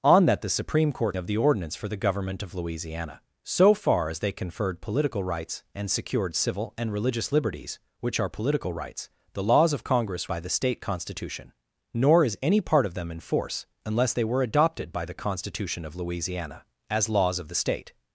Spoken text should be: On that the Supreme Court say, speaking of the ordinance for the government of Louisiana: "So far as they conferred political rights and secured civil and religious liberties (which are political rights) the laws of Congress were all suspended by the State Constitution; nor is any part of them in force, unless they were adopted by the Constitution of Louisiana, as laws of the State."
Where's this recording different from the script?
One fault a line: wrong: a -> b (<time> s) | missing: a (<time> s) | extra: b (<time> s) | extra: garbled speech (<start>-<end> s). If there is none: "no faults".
missing: say speaking (1.1 s)
missing: were all suspended (10.3 s)